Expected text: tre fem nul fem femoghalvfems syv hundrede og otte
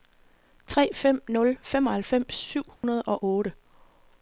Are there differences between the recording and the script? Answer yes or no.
yes